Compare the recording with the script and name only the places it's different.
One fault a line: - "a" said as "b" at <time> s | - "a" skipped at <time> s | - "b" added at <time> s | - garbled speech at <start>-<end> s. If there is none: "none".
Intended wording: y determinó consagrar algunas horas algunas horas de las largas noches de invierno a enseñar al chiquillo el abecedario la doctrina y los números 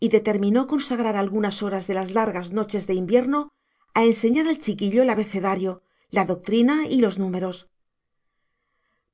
- "algunas horas" skipped at 1.9 s